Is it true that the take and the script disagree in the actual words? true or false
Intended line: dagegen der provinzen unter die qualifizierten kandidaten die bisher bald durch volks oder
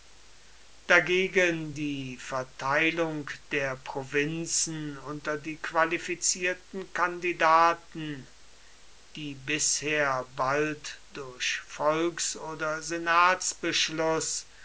true